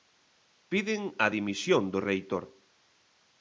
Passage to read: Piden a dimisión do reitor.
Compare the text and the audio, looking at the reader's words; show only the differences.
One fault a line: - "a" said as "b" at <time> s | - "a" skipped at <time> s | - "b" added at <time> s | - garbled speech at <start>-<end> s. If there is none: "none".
none